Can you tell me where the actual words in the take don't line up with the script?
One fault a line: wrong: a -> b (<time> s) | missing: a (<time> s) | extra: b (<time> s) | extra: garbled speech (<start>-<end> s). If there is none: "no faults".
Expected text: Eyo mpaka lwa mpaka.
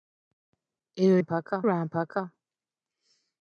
no faults